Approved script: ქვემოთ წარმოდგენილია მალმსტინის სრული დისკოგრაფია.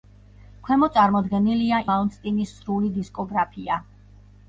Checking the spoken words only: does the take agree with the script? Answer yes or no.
yes